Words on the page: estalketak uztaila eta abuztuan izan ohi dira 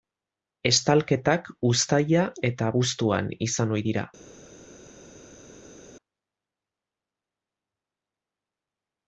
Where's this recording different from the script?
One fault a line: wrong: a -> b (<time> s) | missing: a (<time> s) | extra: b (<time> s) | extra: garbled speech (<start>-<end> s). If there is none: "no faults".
no faults